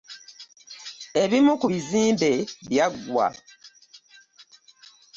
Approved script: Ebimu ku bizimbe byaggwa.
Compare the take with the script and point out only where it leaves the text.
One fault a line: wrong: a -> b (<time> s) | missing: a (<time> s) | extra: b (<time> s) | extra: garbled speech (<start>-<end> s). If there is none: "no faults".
no faults